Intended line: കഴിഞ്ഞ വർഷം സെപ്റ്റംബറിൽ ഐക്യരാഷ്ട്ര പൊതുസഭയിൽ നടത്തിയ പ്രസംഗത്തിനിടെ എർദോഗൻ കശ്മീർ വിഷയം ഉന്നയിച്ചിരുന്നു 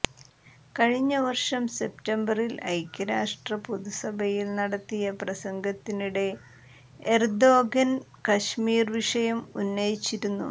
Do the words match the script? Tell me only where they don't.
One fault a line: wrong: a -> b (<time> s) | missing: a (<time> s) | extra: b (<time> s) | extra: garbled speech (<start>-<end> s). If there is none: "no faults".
no faults